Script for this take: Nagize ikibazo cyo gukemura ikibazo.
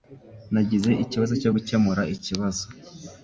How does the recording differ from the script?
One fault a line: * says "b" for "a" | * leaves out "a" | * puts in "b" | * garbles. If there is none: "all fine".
all fine